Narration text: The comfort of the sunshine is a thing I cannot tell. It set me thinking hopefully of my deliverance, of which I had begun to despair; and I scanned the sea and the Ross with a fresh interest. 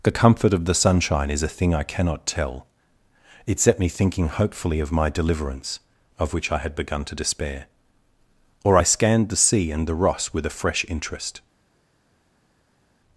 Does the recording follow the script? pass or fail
fail